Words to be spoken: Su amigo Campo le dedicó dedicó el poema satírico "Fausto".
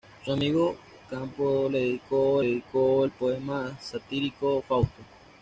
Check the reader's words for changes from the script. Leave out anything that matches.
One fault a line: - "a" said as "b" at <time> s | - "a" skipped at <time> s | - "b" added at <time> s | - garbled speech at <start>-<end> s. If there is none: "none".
none